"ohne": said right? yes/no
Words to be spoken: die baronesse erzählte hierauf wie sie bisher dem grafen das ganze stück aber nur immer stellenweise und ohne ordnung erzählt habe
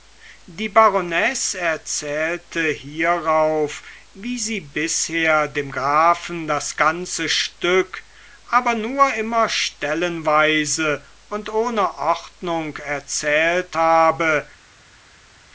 yes